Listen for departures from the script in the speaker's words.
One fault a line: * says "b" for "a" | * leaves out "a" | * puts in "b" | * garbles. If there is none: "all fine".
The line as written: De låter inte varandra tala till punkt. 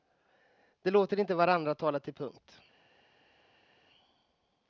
all fine